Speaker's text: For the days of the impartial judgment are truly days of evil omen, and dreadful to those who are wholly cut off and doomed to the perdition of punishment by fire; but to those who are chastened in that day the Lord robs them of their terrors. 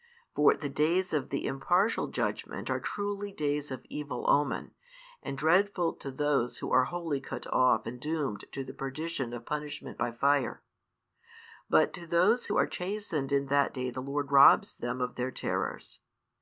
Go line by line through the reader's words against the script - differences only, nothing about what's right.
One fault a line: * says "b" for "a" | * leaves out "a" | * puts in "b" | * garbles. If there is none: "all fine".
all fine